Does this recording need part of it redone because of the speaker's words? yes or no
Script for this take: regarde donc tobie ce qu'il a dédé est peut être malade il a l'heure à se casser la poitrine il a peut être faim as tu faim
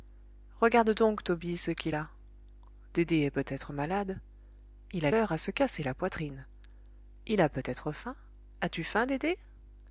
no